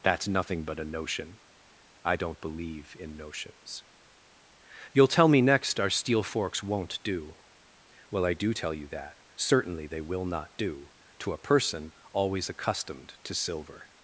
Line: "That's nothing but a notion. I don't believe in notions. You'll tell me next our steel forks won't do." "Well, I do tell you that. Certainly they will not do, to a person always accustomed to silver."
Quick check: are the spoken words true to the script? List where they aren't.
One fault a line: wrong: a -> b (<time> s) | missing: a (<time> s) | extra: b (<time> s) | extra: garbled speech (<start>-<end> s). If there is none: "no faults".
no faults